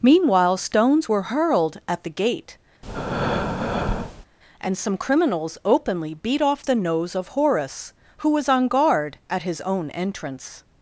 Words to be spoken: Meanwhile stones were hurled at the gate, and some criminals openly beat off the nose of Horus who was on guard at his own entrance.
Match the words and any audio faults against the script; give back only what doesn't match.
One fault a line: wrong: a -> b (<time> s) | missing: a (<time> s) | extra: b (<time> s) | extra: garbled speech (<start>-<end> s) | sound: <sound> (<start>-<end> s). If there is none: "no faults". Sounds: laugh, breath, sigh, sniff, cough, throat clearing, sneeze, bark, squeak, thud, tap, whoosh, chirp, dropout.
sound: breath (2.8-4.3 s)